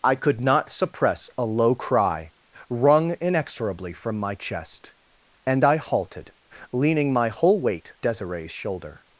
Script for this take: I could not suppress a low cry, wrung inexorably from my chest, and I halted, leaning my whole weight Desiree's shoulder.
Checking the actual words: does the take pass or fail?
pass